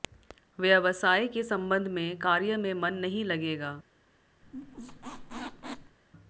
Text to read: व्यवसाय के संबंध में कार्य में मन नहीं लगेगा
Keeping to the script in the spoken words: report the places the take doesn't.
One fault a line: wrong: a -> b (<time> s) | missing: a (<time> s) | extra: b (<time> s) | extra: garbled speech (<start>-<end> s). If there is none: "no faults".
no faults